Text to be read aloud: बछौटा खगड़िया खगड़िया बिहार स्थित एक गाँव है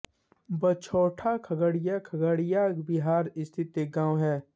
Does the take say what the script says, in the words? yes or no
yes